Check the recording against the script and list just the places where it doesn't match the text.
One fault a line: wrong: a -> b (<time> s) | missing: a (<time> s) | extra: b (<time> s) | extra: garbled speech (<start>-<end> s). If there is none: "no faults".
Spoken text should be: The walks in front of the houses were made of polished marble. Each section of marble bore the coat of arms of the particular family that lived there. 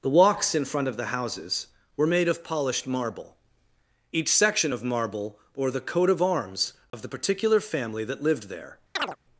no faults